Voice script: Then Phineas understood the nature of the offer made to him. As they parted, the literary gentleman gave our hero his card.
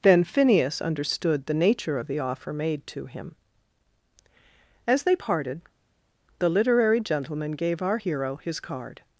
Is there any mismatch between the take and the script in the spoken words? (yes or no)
no